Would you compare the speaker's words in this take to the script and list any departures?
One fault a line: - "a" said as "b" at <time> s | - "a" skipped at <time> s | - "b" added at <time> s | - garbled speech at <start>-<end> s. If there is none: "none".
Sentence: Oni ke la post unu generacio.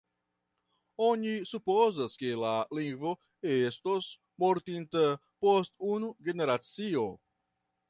- "supozas" added at 1.5 s
- "lingvo estos mortinta" added at 2.8 s